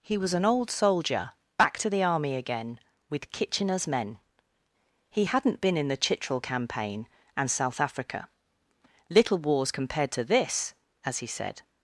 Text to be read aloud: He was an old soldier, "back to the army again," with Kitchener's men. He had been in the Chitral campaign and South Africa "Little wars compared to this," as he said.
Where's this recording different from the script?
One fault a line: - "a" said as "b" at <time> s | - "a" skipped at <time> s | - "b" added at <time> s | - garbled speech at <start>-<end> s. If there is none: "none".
- "had" said as "hadn't" at 5.2 s